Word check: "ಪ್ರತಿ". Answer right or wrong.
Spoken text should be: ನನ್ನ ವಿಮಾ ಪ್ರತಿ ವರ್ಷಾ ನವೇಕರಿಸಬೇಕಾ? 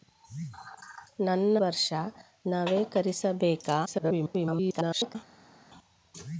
wrong